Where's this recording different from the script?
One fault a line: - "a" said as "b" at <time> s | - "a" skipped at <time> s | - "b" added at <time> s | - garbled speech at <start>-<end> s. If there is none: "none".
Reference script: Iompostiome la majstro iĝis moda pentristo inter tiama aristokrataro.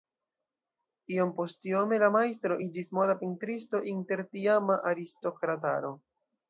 none